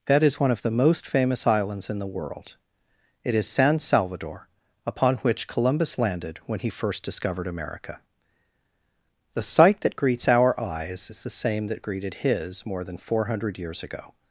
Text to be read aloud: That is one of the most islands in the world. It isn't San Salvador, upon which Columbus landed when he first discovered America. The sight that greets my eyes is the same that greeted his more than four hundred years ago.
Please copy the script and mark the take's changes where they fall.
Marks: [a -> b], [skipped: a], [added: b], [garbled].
That is one of the most [added: famous] islands in the world. It [isn't -> is] San Salvador, upon which Columbus landed when he first discovered America. The sight that greets [my -> our] eyes is the same that greeted his more than four hundred years ago.